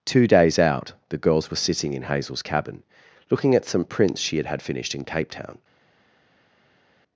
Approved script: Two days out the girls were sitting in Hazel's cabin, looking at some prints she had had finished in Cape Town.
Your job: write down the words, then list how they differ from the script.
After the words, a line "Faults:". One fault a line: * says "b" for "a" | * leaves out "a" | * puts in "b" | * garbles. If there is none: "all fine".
Two days out the girls were sitting in Hazel's cabin, looking at some prints she had had finished in Cape Town.
Faults:
all fine